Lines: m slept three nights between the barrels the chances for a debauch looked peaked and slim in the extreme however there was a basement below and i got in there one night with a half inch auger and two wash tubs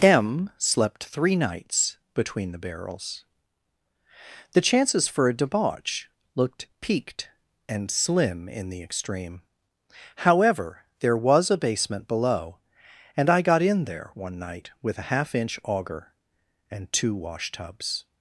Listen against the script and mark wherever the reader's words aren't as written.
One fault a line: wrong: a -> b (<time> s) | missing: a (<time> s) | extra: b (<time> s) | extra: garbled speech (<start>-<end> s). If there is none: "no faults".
no faults